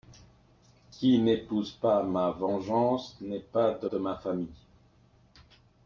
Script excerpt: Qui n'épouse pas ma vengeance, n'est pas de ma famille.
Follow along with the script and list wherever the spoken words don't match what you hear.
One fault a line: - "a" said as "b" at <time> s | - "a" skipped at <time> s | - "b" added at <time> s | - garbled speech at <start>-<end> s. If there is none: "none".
- "de" added at 3.8 s